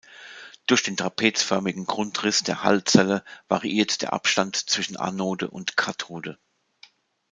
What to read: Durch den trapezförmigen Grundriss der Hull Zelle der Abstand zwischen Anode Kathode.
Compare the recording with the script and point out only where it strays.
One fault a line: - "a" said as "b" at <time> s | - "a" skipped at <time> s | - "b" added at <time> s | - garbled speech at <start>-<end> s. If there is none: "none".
- "variiert" added at 3.5 s
- "und" added at 5.5 s